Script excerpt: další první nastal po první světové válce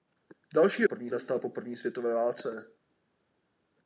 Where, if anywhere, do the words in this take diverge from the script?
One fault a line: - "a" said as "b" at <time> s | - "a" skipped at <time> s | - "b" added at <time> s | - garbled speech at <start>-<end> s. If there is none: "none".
none